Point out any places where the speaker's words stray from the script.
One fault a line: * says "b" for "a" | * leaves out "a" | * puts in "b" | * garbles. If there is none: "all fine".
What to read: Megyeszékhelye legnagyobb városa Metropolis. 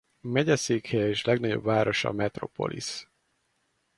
* puts in "és"